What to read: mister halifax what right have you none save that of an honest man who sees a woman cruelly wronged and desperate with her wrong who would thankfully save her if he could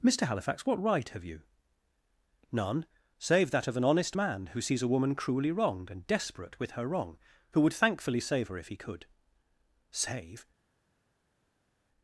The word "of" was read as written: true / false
true